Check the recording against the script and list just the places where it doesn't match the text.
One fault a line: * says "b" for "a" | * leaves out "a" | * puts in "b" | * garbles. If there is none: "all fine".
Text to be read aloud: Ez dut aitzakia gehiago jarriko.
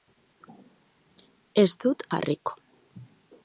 * leaves out "aitzakia gehiago"